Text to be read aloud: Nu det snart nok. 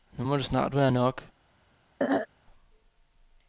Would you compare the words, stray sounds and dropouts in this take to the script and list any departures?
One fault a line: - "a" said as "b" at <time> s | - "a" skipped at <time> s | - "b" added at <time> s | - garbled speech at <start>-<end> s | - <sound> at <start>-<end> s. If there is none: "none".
- "må" added at 0.2 s
- "være" added at 0.7 s
- throat clearing at 2.0-2.3 s